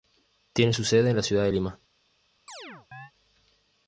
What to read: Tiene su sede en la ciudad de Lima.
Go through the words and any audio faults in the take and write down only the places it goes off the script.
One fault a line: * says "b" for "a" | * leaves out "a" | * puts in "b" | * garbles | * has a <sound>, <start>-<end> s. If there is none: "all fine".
* has a chirp, 2.5-3.1 s